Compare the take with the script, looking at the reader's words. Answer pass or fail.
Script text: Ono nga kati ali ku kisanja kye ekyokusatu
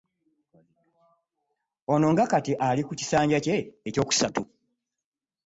pass